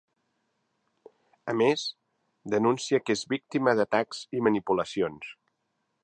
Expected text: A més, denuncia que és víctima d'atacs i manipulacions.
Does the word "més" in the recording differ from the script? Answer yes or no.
no